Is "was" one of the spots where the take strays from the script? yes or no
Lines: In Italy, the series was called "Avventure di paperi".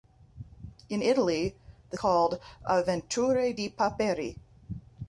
yes